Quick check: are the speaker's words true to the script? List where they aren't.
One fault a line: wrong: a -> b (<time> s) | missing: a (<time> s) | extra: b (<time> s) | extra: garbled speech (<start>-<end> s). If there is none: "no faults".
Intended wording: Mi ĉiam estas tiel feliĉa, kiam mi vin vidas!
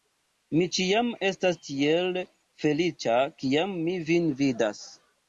no faults